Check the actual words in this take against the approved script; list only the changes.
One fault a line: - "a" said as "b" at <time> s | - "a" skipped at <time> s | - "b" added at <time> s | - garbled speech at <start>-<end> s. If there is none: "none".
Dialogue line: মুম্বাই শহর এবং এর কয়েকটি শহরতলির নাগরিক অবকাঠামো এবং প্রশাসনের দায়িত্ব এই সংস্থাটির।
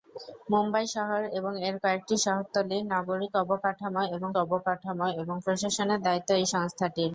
- "অবকাঠামো এবং" added at 4.4 s